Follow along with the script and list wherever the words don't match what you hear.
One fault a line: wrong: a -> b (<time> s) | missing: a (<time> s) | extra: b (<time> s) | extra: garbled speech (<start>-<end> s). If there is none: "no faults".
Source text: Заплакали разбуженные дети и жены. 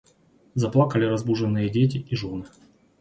no faults